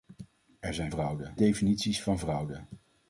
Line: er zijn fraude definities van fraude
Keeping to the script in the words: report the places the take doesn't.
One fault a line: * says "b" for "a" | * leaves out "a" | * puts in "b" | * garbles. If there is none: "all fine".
all fine